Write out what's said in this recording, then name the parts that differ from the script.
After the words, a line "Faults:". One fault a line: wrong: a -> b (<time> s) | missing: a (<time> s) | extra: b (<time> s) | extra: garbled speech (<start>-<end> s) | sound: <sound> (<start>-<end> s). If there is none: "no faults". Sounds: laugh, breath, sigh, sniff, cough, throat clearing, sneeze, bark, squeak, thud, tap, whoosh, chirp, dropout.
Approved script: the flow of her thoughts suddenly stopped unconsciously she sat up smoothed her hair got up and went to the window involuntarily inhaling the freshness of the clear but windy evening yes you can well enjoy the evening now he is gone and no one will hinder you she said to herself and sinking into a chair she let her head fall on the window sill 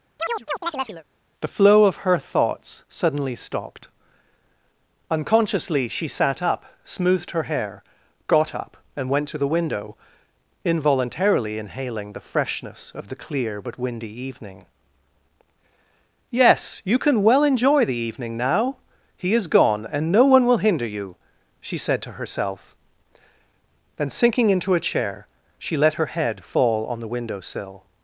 the flow of her thoughts suddenly stopped unconsciously she sat up smoothed her hair got up and went to the window involuntarily inhaling the freshness of the clear but windy evening yes you can well enjoy the evening now he is gone and no one will hinder you she said to herself then sinking into a chair she let her head fall on the window sill
Faults:
sound: chirp (0.2-1.0 s)
wrong: and -> then (24.0 s)